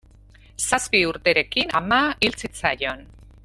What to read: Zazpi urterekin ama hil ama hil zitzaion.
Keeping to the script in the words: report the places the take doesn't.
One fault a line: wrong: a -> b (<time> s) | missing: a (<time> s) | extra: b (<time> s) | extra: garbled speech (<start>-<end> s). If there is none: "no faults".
missing: ama hil (2.4 s)